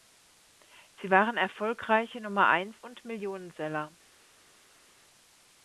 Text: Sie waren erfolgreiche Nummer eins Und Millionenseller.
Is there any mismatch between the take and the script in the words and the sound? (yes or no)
no